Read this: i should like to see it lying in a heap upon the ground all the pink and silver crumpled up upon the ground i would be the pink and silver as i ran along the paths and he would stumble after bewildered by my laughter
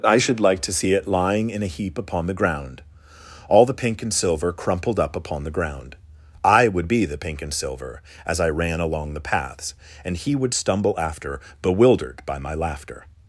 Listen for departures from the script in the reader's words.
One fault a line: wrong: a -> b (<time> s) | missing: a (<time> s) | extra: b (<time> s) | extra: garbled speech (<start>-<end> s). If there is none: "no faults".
no faults